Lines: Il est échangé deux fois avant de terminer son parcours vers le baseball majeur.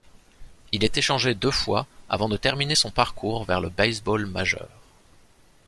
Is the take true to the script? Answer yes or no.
yes